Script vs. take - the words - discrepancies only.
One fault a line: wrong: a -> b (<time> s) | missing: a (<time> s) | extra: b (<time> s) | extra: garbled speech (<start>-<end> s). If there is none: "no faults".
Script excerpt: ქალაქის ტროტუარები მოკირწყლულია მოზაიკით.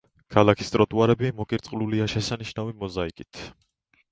extra: შესანიშნავი (2.1 s)